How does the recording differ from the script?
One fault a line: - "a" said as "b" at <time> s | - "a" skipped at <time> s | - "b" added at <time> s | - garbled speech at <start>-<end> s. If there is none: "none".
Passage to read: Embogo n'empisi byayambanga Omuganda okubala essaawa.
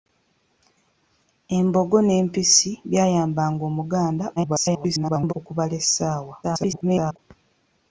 - garbled speech at 4.4-5.3 s
- garbled speech at 6.4-7.2 s